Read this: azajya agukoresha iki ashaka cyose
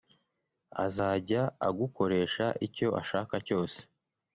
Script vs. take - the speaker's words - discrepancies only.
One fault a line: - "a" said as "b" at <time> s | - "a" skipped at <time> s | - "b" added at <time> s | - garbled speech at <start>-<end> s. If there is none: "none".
- "iki" said as "icyo" at 2.7 s